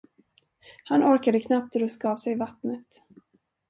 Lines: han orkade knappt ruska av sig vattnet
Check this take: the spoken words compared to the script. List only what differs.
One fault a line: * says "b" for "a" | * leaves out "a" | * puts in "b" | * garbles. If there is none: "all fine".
all fine